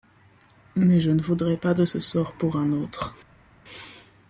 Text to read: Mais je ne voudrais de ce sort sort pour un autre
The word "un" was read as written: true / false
true